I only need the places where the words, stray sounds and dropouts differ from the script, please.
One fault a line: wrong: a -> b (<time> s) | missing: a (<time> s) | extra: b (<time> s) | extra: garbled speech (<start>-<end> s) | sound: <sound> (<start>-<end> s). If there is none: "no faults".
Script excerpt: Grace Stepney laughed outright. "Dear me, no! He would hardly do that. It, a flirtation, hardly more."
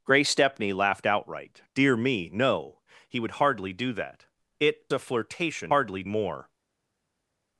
no faults